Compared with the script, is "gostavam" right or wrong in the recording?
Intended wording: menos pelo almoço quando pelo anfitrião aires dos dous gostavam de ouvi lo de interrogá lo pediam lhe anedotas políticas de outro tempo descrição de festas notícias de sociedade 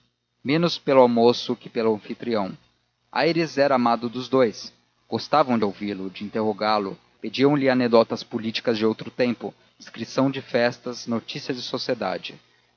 right